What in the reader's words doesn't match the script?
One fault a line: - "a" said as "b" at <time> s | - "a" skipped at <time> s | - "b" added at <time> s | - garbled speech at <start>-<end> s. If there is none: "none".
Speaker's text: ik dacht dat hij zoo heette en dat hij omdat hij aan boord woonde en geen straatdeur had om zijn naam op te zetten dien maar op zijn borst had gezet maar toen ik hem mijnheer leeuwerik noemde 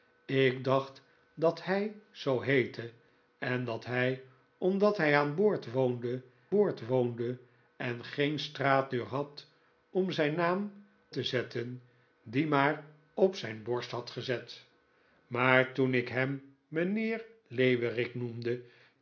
- "boord woonde" added at 6.5 s
- "op" skipped at 10.9 s